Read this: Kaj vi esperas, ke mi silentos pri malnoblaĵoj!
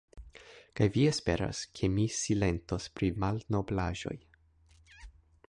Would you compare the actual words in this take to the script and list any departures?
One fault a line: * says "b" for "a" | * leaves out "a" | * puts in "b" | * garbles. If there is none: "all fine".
all fine